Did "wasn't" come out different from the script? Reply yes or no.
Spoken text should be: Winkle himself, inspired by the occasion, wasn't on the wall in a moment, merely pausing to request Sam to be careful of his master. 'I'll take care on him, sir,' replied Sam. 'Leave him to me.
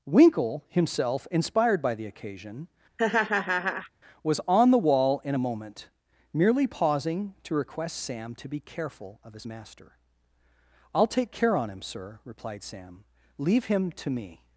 yes